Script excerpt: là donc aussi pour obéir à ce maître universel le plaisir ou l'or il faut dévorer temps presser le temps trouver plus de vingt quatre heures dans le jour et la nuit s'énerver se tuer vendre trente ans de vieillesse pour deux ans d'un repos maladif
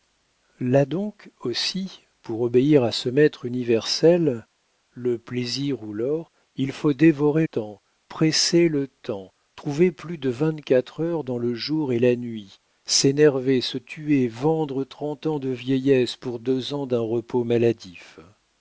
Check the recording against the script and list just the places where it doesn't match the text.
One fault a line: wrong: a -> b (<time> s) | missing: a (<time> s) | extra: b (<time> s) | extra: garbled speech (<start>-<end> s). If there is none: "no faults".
no faults